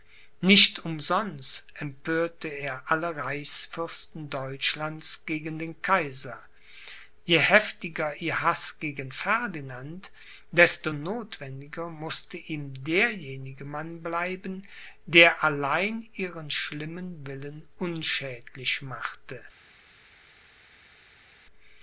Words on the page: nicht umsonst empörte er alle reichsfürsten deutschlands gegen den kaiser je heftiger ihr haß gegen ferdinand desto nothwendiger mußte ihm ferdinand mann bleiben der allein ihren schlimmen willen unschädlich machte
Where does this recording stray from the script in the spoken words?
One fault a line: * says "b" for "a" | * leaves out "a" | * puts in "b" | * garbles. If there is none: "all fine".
* says "derjenige" for "ferdinand"